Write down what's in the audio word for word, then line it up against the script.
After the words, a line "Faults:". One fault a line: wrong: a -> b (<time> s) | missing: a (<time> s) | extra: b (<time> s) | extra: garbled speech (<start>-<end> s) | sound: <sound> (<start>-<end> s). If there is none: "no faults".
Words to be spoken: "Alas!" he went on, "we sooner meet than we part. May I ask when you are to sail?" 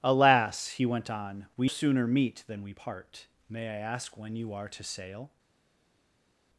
"Alas!" he went on, "we sooner meet than we part. May I ask when you are to sail?"
Faults:
no faults